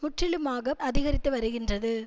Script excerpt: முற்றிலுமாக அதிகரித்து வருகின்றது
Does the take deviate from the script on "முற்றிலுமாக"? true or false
false